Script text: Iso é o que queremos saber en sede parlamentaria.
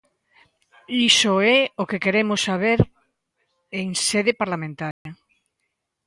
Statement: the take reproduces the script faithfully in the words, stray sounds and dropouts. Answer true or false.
false